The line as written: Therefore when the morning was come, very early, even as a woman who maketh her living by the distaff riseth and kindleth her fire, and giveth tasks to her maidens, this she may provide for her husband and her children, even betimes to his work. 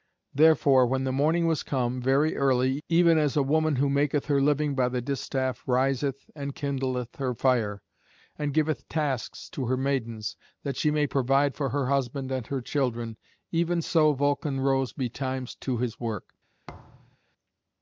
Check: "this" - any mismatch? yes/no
yes